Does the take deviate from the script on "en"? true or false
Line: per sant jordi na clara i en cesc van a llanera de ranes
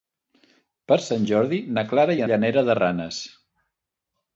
true